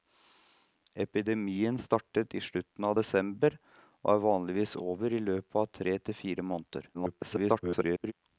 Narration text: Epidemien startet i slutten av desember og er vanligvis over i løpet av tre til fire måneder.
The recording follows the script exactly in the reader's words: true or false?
false